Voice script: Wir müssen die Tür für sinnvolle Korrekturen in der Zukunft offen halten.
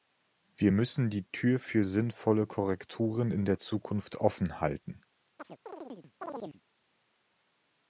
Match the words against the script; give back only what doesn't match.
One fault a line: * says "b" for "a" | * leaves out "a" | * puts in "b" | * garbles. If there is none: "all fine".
all fine